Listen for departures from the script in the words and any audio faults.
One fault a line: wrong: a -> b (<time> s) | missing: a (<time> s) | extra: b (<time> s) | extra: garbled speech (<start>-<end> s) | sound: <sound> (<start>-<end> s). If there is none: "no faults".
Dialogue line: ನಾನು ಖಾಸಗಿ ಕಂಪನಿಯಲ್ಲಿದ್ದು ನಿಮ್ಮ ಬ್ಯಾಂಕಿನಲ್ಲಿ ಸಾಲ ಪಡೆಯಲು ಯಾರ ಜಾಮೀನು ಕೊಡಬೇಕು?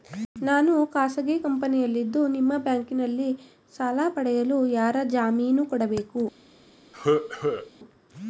sound: cough (6.9-7.7 s)